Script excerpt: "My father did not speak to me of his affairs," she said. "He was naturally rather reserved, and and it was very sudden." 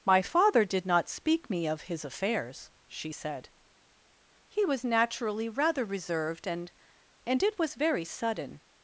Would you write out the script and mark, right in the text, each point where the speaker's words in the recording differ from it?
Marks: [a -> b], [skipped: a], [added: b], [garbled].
"My father did not speak [skipped: to] me of his affairs," she said. "He was naturally rather reserved, and and it was very sudden."